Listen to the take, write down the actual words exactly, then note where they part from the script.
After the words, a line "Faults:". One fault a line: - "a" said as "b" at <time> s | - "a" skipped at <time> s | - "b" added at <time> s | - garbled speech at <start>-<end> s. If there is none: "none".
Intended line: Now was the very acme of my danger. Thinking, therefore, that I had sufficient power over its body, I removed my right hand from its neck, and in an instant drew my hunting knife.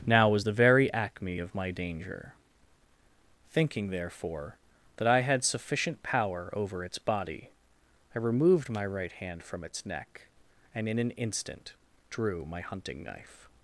Now was the very acme of my danger. Thinking, therefore, that I had sufficient power over its body, I removed my right hand from its neck, and in an instant drew my hunting knife.
Faults:
none